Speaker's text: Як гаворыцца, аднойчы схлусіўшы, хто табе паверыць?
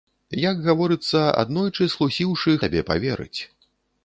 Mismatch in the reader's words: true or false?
true